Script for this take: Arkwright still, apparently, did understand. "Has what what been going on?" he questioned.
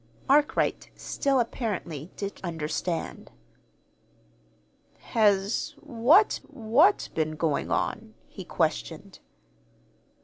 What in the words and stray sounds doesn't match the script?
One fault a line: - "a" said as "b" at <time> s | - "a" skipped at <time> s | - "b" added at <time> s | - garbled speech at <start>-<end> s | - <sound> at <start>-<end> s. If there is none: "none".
none